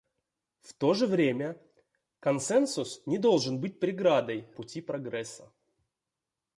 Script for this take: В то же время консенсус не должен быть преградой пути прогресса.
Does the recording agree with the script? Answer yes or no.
yes